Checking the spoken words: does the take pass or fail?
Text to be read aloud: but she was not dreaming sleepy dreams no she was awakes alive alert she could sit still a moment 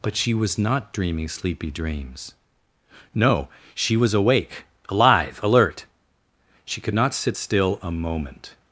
fail